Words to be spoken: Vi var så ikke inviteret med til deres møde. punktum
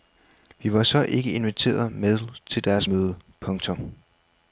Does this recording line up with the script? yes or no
yes